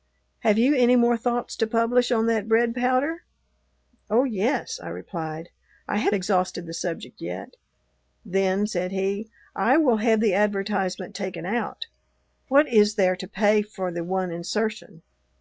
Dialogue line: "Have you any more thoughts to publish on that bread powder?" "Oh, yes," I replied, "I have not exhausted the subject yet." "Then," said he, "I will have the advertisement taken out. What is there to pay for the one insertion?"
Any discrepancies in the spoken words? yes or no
yes